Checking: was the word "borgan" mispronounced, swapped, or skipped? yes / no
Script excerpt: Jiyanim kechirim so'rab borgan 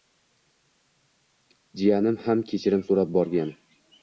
no